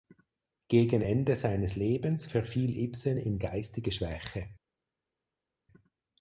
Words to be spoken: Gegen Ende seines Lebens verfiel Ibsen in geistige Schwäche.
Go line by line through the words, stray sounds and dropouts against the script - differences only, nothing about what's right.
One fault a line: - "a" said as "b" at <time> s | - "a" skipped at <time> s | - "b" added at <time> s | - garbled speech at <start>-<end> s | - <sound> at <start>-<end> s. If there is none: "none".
none